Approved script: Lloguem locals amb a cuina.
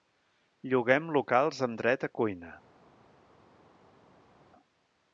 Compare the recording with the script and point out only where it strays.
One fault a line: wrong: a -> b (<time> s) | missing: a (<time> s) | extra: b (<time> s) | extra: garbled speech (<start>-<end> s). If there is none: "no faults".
extra: dret (1.8 s)